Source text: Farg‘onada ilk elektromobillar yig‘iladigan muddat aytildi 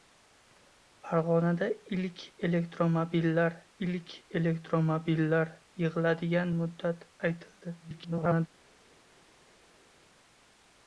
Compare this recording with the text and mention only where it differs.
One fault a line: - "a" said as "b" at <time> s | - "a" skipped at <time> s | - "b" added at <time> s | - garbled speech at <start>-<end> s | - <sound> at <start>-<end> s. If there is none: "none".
- "ilk elektromobillar" added at 3.9 s
- garbled speech at 7.8-8.5 s